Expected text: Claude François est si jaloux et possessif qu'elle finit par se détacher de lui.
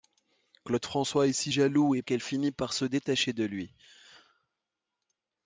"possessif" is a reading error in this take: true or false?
true